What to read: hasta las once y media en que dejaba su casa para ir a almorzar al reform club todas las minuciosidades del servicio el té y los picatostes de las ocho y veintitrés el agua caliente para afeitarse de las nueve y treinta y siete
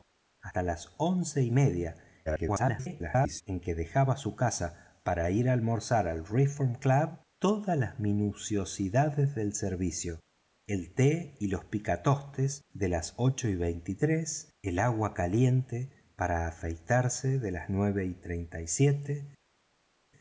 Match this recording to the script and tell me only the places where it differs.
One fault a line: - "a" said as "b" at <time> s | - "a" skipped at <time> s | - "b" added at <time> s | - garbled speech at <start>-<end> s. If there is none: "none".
- garbled speech at 2.3-3.4 s